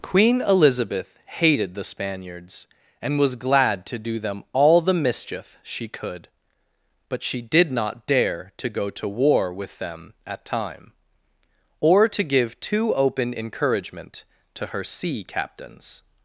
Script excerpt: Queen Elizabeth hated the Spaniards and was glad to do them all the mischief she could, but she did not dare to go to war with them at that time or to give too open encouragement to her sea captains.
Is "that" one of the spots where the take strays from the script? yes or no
yes